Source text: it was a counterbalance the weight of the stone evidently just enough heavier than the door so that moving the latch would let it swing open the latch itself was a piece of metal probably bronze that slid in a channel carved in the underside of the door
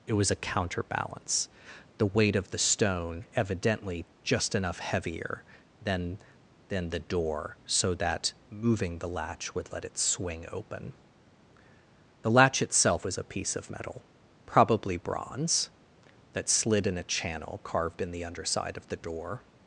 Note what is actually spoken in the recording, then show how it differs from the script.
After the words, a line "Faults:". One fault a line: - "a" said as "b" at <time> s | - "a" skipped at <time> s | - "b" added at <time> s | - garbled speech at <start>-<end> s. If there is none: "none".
it was a counterbalance the weight of the stone evidently just enough heavier than than the door so that moving the latch would let it swing open the latch itself was a piece of metal probably bronze that slid in a channel carved in the underside of the door
Faults:
- "than" added at 6.7 s